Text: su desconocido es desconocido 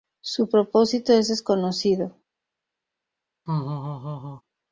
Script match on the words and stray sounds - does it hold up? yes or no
no